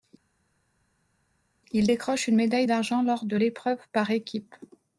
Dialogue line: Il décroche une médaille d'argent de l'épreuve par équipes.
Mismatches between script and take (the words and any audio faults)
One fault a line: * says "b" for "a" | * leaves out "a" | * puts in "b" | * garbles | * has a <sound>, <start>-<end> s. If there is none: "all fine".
* puts in "lors"